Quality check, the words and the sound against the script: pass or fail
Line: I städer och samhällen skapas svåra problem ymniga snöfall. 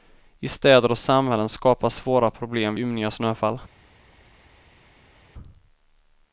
pass